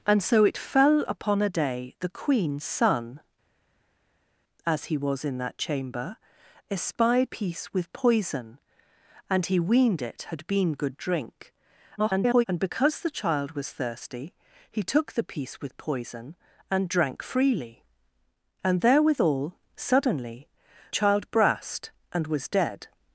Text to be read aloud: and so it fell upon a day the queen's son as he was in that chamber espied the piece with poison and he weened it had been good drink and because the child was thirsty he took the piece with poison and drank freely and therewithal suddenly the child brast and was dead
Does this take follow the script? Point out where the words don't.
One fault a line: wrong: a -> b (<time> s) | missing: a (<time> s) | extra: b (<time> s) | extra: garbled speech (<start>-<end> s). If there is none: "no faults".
missing: the (7.3 s)
extra: garbled speech (12.0-12.4 s)
missing: the (20.5 s)